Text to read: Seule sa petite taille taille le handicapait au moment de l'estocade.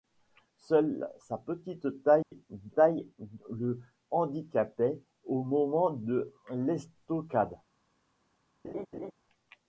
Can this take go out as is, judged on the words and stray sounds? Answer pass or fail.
fail